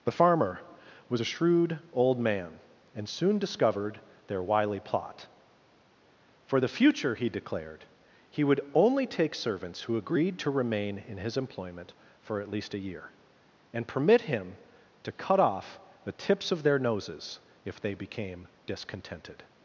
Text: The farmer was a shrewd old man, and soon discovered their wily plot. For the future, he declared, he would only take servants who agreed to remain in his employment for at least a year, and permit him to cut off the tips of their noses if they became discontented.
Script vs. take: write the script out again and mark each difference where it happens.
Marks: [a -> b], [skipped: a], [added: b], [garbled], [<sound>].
The farmer was a shrewd old man, and soon discovered their wily plot. For the future, he declared, he would only take servants who agreed to remain in his employment for at least a year, and permit him to cut off the tips of their noses if they became discontented.